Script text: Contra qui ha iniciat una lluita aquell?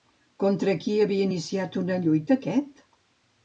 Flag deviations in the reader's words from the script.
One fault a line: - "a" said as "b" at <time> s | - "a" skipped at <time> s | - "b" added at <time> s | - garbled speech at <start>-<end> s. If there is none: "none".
- "ha" said as "havia" at 1.0 s
- "aquell" said as "aquest" at 2.4 s